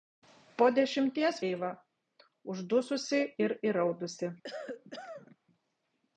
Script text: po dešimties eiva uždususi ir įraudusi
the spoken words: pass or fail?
pass